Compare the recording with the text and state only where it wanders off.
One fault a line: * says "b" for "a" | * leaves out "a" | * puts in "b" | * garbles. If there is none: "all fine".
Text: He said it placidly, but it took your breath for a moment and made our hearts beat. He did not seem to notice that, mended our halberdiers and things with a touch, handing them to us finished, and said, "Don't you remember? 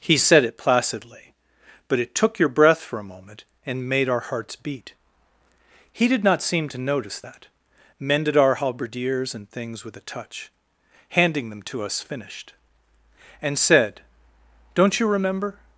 all fine